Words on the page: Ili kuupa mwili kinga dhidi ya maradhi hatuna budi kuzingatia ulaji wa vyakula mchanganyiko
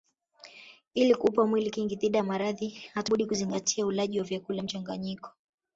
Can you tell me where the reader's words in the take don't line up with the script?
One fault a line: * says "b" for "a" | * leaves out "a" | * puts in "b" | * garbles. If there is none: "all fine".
all fine